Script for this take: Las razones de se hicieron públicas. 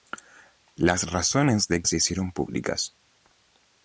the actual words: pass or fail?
pass